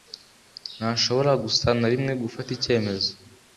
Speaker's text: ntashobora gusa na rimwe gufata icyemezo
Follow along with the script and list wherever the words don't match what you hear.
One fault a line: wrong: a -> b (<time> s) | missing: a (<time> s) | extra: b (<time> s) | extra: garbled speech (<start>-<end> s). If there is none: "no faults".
no faults